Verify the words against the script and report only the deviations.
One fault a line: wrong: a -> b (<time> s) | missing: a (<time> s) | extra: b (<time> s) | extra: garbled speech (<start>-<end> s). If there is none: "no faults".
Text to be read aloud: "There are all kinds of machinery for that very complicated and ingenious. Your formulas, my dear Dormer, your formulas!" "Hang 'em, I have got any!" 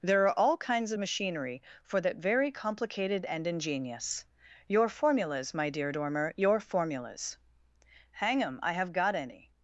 no faults